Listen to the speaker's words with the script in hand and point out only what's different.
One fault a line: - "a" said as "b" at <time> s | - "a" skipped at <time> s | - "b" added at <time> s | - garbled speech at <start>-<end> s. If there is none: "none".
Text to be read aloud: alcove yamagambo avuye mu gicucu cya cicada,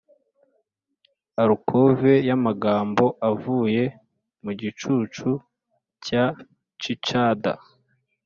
none